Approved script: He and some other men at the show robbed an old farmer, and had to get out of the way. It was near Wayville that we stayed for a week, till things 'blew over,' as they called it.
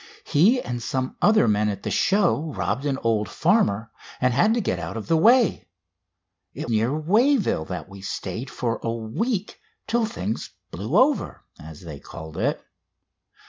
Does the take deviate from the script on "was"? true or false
true